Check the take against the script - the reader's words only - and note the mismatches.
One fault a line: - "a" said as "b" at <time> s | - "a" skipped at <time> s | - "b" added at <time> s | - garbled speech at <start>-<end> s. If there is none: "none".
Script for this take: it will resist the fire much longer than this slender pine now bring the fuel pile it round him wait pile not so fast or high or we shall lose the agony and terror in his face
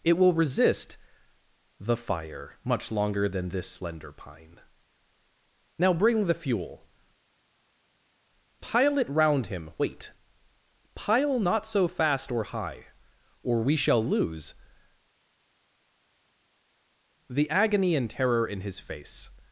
none